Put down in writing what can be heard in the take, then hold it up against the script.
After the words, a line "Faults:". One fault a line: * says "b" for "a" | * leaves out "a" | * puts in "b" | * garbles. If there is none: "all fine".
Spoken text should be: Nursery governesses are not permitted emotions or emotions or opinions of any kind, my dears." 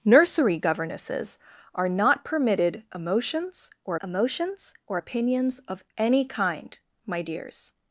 Nursery governesses are not permitted emotions or emotions or opinions of any kind, my dears."
Faults:
all fine